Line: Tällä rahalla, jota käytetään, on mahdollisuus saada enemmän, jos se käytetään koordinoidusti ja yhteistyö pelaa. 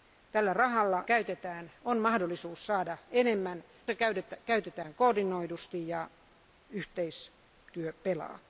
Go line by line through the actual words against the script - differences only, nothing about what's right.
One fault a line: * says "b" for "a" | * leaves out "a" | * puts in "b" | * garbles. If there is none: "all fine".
* leaves out "jota"
* leaves out "jos"